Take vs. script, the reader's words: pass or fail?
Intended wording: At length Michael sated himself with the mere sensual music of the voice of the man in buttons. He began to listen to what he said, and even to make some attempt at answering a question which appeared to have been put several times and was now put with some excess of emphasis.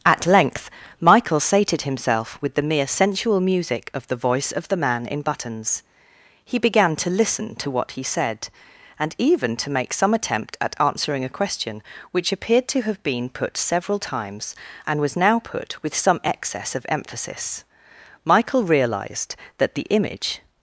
fail